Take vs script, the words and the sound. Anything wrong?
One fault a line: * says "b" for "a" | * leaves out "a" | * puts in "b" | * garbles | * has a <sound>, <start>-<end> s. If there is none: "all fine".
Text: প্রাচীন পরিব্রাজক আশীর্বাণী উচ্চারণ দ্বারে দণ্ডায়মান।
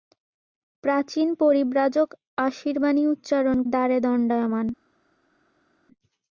all fine